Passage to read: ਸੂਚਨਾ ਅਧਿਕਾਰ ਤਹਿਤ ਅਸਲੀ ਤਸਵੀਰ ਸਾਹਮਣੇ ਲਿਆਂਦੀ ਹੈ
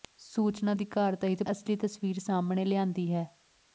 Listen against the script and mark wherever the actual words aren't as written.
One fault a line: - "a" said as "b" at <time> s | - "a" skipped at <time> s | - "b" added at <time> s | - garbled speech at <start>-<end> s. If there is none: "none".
none